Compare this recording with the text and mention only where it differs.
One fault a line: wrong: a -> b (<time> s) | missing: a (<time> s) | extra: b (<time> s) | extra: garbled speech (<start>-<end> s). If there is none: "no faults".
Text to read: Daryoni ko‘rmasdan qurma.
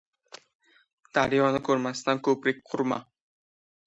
extra: ko‘prik (2.3 s)